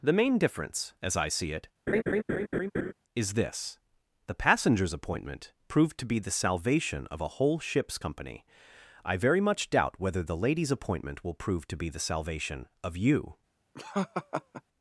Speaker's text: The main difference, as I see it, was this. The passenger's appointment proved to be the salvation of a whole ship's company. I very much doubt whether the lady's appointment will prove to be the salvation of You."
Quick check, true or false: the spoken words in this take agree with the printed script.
false